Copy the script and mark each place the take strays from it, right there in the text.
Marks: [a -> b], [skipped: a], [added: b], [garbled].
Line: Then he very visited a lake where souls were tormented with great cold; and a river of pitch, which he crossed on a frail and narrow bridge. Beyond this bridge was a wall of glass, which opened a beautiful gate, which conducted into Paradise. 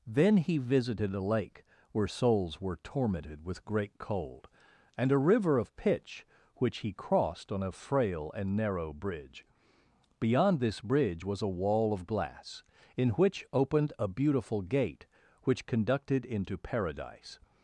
Then he [skipped: very] visited a lake where souls were tormented with great cold; and a river of pitch, which he crossed on a frail and narrow bridge. Beyond this bridge was a wall of glass, [added: in] which opened a beautiful gate, which conducted into Paradise.